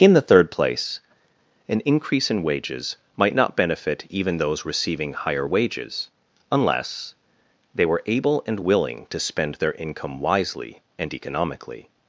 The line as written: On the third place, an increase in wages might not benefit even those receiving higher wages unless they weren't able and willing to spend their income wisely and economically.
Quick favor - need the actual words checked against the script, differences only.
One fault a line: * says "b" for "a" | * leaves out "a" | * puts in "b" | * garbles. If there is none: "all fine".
* says "In" for "On"
* says "were" for "weren't"